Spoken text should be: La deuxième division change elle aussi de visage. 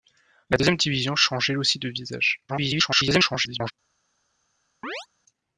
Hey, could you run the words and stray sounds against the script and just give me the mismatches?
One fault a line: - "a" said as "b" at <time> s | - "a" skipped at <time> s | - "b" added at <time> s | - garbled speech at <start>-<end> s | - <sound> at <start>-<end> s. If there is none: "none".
- garbled speech at 2.5-3.7 s
- chirp at 4.8-5.1 s